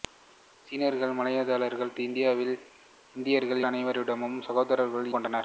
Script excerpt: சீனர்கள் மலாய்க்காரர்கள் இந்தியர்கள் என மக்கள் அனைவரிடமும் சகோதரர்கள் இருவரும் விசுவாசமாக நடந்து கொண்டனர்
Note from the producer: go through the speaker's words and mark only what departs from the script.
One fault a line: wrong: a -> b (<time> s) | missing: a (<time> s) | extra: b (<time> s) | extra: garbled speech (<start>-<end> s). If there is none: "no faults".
missing: என மக்கள் (3.6 s)
missing: இருவரும் விசுவாசமாக நடந்து (5.1 s)